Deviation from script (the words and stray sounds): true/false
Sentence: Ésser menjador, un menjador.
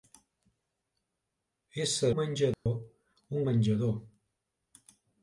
true